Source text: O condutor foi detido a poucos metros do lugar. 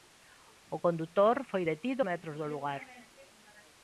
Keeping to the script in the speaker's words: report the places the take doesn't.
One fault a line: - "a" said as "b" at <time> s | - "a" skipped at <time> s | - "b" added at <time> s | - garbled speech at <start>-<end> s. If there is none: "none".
- "a poucos" skipped at 2.0 s